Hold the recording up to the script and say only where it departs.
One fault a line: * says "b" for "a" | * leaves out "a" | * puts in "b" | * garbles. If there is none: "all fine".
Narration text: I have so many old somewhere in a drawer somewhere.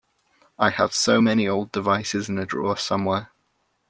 * says "devices" for "somewhere"